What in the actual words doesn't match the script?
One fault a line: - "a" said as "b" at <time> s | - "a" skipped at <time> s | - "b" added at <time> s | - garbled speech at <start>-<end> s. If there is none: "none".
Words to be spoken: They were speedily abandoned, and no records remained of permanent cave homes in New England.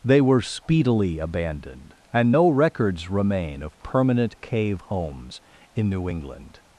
- "remained" said as "remain" at 3.1 s